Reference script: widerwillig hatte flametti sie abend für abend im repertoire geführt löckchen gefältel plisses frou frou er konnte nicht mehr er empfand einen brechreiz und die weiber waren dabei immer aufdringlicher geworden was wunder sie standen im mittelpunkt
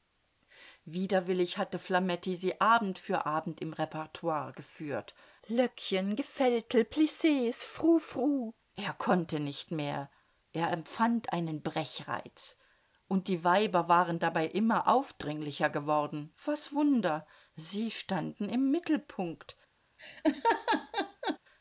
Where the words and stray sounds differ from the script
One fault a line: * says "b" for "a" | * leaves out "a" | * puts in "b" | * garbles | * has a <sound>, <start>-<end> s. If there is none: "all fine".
* has a laugh, 20.0-21.4 s